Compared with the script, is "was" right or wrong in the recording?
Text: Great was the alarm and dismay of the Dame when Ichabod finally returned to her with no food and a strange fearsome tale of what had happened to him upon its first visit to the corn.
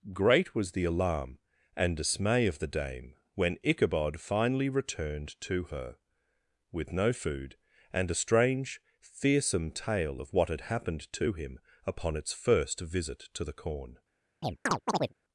right